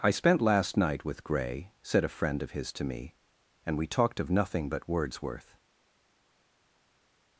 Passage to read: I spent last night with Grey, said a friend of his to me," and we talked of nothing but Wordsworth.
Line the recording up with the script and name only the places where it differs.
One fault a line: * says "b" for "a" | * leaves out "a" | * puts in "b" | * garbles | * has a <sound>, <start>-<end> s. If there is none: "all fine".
all fine